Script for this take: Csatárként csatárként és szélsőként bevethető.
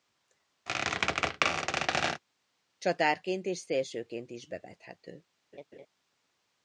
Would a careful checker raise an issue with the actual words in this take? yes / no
yes